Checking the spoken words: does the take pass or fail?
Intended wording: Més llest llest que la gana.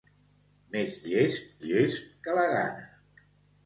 pass